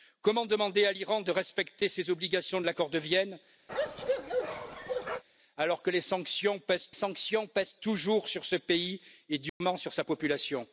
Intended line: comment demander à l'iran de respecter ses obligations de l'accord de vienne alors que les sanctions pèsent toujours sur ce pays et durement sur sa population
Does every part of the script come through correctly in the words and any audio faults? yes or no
no